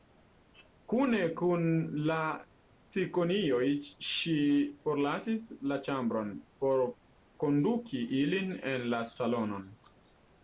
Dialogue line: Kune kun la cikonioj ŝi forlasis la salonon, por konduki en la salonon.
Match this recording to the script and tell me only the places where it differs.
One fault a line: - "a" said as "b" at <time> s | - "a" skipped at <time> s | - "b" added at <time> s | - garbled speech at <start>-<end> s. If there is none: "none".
- "salonon" said as "ĉambron" at 5.9 s
- "ilin" added at 8.2 s